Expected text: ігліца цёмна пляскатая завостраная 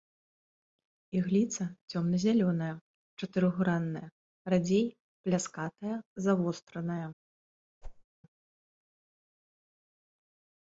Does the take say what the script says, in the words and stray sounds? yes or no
no